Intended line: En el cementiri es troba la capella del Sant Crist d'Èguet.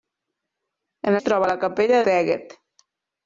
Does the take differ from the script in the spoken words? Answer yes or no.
yes